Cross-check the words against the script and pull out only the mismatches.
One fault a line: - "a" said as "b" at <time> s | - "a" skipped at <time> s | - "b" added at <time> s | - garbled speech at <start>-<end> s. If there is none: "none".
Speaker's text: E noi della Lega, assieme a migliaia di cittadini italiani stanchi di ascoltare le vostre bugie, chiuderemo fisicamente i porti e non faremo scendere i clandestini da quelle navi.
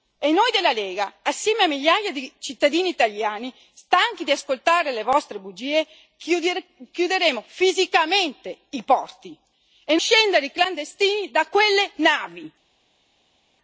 - "non faremo" skipped at 10.0 s